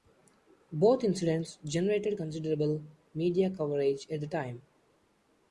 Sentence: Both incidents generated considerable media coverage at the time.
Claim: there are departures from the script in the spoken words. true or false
false